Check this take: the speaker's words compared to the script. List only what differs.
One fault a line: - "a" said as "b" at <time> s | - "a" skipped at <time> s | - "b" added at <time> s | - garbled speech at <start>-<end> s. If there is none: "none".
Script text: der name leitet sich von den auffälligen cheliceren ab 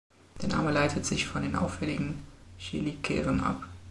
none